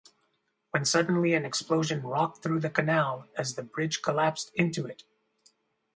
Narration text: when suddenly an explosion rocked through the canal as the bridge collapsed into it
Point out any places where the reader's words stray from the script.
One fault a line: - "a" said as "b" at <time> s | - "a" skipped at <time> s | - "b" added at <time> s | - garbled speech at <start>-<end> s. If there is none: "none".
none